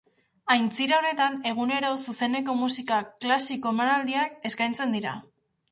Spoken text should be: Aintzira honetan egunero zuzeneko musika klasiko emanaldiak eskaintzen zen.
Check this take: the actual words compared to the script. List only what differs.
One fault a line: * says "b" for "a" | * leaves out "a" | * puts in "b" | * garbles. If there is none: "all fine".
* says "dira" for "zen"